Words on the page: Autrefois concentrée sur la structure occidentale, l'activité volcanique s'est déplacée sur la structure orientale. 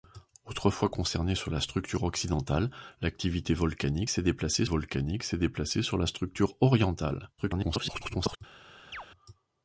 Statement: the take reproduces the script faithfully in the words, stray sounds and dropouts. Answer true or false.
false